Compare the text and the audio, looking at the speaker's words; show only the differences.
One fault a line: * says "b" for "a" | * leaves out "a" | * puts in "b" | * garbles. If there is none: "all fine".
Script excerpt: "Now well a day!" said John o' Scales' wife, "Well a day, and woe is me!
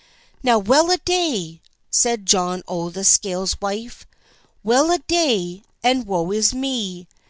* puts in "the"